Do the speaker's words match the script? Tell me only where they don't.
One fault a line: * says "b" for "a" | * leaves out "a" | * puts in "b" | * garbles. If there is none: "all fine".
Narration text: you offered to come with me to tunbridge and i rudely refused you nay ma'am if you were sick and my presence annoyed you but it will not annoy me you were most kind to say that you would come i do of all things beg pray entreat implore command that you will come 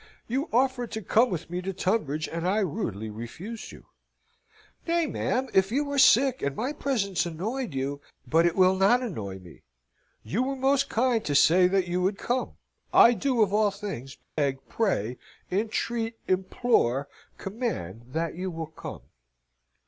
all fine